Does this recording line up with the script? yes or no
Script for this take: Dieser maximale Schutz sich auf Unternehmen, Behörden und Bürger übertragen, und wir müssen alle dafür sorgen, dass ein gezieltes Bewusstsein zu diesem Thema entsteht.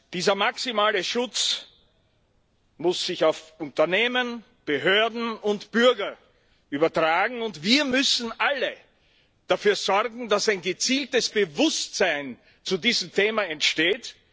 no